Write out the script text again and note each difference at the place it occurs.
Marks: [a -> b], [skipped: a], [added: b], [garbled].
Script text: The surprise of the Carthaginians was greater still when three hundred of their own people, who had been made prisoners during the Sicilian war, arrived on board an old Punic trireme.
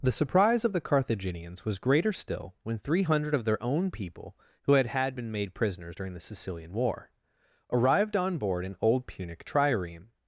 The surprise of the Carthaginians was greater still when three hundred of their own people, who had [added: had] been made prisoners during the Sicilian war, arrived on board an old Punic trireme.